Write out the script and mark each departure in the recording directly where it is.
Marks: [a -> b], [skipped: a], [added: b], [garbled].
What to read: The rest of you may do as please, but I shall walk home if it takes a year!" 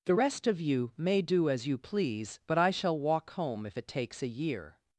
The rest of you may do as [added: you] please, but I shall walk home if it takes a year!"